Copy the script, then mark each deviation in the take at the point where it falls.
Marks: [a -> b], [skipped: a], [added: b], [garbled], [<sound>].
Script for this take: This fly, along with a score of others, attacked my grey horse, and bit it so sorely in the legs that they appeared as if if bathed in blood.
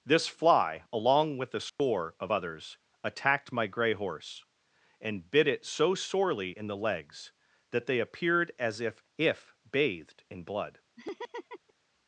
This fly, along with a score [dropout] of others, attacked my grey horse, and bit it so sorely in the legs that they appeared as if if bathed in blood. [laugh]